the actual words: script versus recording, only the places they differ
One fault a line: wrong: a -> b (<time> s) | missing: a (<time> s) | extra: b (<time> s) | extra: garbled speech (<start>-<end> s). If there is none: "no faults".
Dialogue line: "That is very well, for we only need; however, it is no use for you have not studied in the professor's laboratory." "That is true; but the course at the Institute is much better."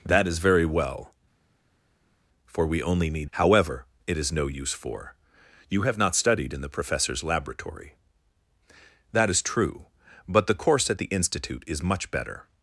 no faults